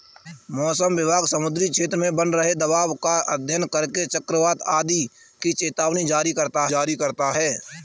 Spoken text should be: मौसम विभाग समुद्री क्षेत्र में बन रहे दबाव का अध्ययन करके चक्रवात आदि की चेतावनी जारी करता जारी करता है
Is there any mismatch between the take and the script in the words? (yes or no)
no